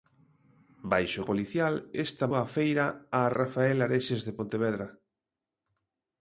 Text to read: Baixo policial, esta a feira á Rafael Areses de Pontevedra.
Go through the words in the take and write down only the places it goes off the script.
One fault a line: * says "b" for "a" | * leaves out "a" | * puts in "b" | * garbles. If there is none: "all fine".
all fine